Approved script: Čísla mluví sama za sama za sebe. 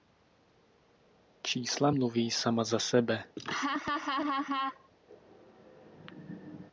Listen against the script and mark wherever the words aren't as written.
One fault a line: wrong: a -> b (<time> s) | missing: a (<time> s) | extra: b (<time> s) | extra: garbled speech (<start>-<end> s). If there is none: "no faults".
missing: sama za (2.8 s)